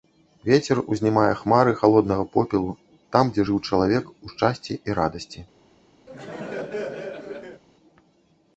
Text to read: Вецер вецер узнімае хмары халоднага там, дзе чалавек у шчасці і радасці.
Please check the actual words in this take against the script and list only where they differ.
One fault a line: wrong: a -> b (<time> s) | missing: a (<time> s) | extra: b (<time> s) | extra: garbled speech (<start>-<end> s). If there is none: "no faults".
missing: вецер (0.8 s)
extra: попелу (2.4 s)
extra: жыў (3.5 s)